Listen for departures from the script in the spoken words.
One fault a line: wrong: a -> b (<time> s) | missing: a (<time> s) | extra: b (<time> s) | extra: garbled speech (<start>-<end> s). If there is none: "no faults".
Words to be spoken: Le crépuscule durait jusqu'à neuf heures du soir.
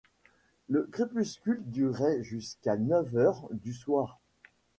no faults